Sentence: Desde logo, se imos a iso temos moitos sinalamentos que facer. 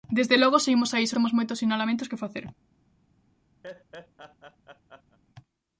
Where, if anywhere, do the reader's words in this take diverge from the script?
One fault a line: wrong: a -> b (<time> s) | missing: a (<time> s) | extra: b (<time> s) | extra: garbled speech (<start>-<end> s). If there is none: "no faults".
no faults